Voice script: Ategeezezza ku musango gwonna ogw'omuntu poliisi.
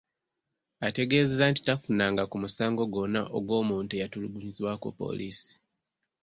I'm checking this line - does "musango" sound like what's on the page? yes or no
yes